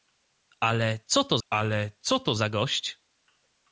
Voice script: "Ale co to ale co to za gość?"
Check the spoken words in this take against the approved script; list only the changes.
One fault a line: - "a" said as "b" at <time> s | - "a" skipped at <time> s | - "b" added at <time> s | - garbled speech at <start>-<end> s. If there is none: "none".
none